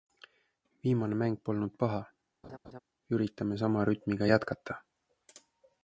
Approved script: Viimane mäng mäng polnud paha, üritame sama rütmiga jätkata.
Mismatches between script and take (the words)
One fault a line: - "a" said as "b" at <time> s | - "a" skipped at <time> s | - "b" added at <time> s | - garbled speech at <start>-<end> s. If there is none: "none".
- "mäng" skipped at 1.4 s